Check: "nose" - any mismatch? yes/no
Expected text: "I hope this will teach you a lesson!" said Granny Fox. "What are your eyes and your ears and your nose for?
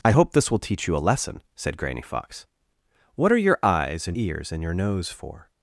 no